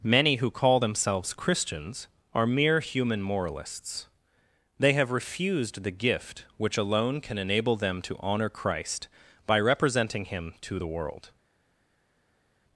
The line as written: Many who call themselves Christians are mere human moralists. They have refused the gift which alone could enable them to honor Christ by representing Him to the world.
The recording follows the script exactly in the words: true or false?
false